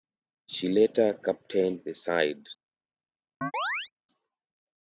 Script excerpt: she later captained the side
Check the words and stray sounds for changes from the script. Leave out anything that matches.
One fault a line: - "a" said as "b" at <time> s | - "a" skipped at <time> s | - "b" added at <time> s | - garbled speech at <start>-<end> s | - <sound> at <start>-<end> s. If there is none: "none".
- chirp at 3.4-3.9 s